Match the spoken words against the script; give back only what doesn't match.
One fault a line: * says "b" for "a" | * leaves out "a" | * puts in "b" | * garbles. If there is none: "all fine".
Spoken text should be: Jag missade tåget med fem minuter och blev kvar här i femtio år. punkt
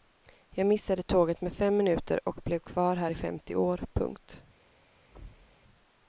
all fine